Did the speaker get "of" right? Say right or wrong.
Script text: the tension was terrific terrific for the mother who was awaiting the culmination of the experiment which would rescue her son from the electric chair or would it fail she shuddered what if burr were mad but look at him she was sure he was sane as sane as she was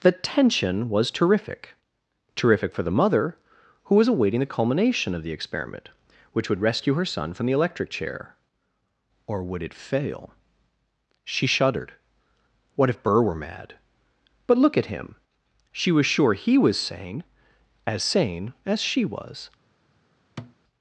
right